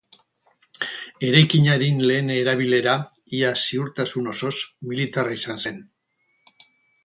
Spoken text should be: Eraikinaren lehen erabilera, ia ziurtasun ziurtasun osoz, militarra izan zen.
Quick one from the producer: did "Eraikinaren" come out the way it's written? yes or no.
yes